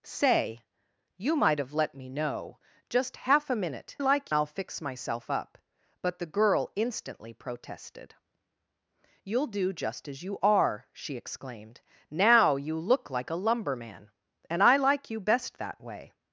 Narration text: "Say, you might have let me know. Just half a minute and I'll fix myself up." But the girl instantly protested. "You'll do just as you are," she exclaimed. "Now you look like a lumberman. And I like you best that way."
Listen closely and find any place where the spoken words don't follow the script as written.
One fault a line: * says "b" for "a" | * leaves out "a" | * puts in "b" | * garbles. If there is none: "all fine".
* says "like" for "and"